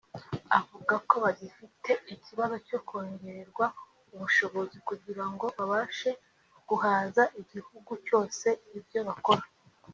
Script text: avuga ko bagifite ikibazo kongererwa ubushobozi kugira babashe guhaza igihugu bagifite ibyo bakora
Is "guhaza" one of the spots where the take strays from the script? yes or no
no